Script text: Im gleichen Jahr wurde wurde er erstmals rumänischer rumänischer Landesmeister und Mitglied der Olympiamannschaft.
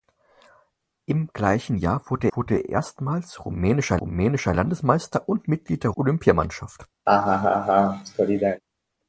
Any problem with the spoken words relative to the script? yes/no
no